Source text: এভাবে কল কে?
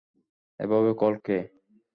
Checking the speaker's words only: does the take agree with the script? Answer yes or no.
yes